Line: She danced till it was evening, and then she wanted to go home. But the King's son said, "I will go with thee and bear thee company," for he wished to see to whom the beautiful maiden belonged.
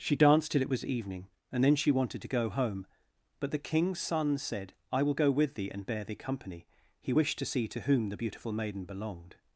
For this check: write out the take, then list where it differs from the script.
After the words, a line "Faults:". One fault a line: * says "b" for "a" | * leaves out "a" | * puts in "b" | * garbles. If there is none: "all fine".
She danced till it was evening, and then she wanted to go home. But the King's son said, "I will go with thee and bear thee company," he wished to see to whom the beautiful maiden belonged.
Faults:
* leaves out "for"